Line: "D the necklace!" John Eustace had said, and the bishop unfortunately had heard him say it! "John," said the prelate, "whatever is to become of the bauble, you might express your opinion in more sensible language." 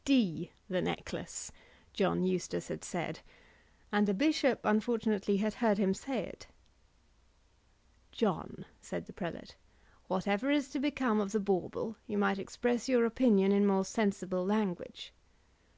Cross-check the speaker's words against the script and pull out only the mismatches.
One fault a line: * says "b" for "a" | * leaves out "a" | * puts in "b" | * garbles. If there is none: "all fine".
all fine